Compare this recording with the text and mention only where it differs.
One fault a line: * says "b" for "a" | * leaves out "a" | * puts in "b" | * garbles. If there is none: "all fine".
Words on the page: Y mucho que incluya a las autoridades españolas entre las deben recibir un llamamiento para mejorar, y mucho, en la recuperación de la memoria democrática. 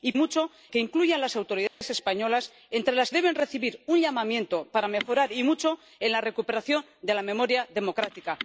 all fine